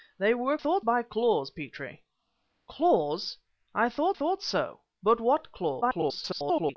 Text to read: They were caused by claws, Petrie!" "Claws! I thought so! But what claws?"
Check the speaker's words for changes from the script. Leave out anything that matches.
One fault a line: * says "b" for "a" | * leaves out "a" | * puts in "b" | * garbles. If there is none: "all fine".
* says "thought" for "caused"
* puts in "thought"
* garbles